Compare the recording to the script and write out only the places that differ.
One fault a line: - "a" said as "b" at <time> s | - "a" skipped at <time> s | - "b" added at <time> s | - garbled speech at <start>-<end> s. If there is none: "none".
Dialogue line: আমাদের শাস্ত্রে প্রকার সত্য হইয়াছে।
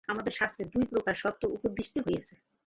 - "দুই" added at 0.7 s
- "উপদিষ্ট" added at 1.5 s